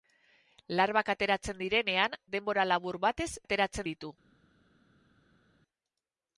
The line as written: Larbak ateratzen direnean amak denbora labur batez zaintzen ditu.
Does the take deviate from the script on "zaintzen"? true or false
true